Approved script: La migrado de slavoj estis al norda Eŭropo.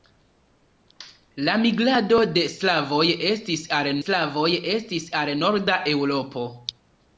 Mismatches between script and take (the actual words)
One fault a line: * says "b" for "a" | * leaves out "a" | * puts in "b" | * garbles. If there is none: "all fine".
* puts in "slavoj estis al"